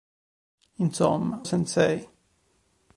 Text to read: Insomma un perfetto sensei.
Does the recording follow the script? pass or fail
fail